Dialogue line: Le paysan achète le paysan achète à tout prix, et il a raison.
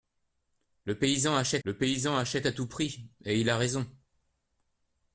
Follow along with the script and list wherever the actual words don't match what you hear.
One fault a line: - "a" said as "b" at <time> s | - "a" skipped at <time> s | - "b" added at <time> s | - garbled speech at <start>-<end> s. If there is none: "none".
none